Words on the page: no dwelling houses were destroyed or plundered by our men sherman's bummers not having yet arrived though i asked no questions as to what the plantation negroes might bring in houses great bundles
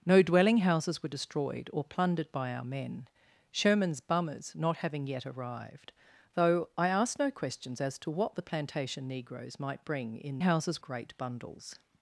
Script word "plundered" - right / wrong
right